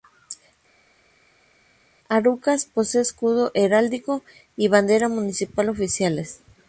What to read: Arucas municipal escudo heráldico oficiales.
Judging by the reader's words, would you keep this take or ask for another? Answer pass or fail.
fail